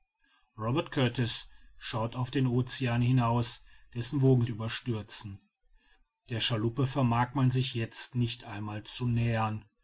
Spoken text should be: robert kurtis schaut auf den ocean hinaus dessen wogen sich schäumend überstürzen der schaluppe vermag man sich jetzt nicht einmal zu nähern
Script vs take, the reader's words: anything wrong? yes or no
yes